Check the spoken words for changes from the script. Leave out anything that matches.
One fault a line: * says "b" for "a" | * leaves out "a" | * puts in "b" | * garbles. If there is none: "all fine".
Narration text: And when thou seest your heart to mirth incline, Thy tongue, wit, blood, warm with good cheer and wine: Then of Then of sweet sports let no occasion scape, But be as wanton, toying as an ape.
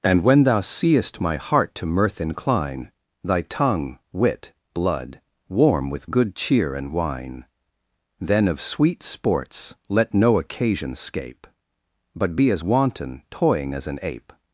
* says "my" for "your"
* leaves out "Then of"